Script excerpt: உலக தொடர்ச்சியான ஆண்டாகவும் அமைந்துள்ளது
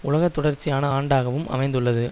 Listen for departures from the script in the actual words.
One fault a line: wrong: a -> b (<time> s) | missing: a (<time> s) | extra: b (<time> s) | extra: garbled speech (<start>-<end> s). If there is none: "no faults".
no faults